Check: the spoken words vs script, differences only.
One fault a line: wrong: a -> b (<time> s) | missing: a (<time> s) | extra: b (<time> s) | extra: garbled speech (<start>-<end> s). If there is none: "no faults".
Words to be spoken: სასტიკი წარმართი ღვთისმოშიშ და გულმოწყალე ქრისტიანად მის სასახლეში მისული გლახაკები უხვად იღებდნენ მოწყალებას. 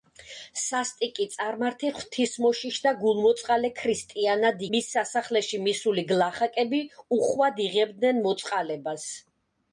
no faults